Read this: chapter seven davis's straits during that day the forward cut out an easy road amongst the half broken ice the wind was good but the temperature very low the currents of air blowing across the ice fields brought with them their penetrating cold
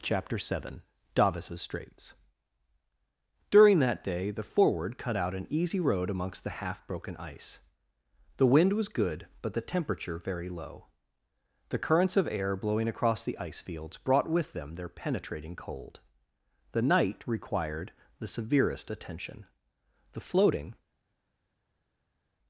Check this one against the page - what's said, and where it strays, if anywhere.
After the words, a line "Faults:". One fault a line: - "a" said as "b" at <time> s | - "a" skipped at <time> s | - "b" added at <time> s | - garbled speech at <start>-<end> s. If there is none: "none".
chapter seven davis's straits during that day the forward cut out an easy road amongst the half broken ice the wind was good but the temperature very low the currents of air blowing across the ice fields brought with them their penetrating cold the night required the severest attention the floating
Faults:
- "the night required the severest attention the floating" added at 16.7 s